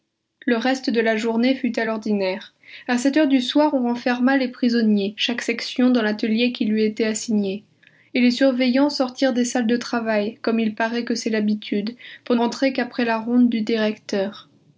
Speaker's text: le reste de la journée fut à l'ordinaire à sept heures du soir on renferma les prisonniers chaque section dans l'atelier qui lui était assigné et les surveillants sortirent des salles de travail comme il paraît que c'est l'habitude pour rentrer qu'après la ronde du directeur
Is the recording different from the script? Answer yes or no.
no